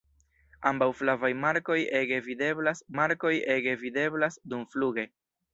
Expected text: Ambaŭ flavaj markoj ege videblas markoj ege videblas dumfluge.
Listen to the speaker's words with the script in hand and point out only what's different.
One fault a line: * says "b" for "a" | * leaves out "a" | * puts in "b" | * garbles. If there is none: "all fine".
all fine